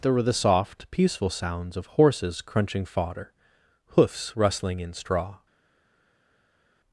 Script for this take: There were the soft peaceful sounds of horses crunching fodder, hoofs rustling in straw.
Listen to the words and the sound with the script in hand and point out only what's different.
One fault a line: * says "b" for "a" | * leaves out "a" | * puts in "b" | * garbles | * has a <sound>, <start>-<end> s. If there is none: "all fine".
all fine